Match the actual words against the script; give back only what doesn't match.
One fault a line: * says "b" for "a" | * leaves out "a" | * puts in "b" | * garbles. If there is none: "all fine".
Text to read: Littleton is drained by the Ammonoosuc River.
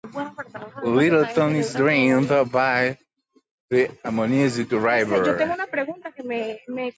all fine